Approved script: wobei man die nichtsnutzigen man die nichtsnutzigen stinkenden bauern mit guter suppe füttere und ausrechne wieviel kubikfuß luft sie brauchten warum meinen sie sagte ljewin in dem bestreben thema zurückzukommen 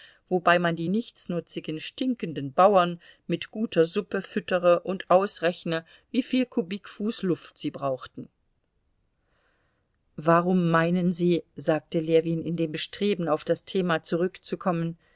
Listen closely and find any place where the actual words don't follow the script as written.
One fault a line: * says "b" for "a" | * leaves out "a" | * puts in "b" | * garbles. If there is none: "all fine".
* leaves out "man die nichtsnutzigen"
* puts in "auf das"